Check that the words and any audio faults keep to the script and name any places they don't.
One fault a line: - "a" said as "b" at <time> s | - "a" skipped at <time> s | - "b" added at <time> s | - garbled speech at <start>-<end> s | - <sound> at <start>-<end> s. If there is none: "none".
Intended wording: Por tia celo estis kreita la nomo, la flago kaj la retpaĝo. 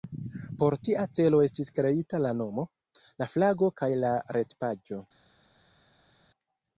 none